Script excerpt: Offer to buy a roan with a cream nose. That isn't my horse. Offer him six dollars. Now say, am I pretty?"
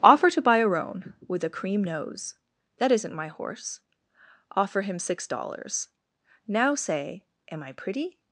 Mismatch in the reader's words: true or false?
false